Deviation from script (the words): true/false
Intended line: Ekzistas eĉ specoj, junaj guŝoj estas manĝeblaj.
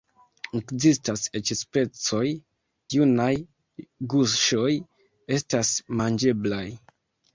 false